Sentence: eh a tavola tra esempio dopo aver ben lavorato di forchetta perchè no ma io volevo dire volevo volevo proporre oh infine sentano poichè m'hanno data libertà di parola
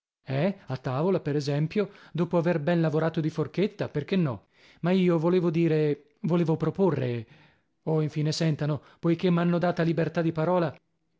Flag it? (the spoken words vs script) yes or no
yes